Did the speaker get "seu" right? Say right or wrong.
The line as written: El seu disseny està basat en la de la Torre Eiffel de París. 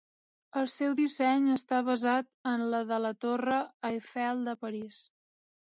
right